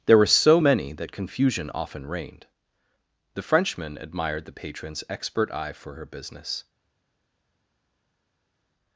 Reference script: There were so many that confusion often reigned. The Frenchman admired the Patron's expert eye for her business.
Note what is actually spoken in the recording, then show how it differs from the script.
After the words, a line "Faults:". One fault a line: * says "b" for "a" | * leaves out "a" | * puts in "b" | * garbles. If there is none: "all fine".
There were so many that confusion often reigned. The Frenchman admired the Patron's expert eye for her business.
Faults:
all fine